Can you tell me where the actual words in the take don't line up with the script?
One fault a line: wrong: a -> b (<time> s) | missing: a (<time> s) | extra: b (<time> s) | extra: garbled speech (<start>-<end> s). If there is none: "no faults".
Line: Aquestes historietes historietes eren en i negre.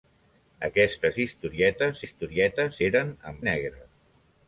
no faults